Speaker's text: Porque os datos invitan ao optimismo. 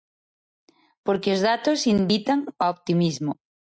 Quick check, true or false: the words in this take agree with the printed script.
true